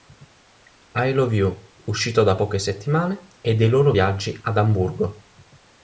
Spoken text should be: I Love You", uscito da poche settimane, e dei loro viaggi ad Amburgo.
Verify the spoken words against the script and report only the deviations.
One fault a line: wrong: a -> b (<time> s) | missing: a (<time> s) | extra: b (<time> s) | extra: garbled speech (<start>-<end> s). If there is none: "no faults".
no faults